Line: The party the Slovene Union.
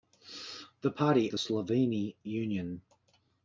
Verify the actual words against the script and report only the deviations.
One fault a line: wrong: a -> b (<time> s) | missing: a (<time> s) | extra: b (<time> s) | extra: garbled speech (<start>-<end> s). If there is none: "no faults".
no faults